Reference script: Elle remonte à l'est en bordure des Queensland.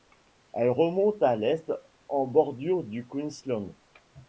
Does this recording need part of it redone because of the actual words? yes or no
yes